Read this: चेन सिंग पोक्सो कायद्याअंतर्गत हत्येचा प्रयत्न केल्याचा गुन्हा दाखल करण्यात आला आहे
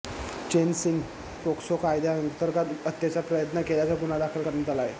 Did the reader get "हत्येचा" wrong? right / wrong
right